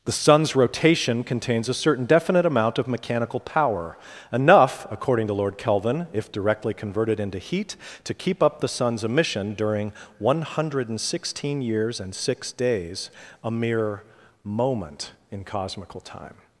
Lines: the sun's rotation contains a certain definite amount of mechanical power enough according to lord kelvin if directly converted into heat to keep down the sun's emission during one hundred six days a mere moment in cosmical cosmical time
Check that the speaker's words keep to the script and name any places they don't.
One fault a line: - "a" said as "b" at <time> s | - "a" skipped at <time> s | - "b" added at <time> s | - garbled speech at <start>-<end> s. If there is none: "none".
- "down" said as "up" at 8.4 s
- "sixteen years and" added at 11.0 s
- "cosmical" skipped at 16.0 s